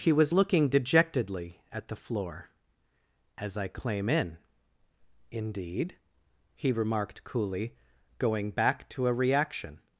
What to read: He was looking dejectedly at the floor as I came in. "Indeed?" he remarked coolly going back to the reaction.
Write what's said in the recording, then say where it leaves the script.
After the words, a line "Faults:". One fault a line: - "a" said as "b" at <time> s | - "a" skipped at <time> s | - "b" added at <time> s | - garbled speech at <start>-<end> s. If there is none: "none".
He was looking dejectedly at the floor as I claim in. "Indeed?" he remarked coolly going back to a reaction.
Faults:
- "came" said as "claim" at 3.7 s
- "the" said as "a" at 9.1 s